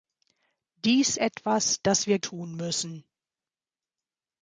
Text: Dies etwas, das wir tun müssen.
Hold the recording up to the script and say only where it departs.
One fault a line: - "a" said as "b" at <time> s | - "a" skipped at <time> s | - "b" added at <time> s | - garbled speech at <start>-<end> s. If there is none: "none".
none